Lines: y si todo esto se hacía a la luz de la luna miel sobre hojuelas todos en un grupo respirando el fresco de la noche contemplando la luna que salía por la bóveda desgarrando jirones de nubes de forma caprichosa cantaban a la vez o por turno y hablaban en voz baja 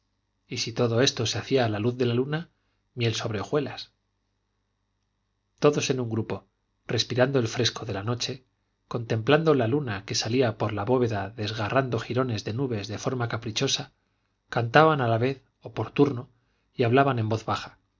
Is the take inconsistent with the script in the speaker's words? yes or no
no